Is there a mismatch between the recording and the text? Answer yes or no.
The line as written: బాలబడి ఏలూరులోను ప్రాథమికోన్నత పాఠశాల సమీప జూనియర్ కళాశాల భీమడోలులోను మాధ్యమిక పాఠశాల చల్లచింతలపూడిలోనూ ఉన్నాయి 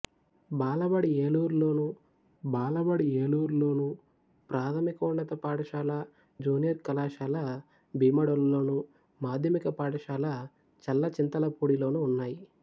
yes